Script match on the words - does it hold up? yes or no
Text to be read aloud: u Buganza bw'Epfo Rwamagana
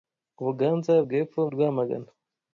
yes